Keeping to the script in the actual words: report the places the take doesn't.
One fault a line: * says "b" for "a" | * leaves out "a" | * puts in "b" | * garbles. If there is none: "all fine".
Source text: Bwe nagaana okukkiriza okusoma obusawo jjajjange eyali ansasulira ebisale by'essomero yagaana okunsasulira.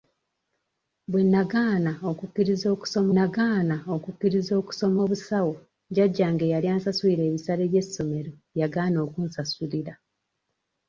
* puts in "nagaana okukkiriza okusoma"